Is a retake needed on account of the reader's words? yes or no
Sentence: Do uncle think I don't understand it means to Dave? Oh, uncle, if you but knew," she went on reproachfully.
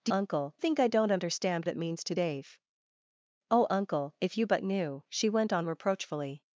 no